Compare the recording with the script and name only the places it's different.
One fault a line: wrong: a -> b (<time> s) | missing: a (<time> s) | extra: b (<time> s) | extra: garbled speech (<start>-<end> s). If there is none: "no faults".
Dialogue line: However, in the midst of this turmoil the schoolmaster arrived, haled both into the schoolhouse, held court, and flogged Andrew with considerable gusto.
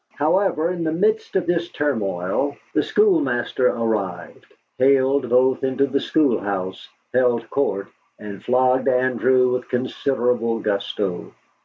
no faults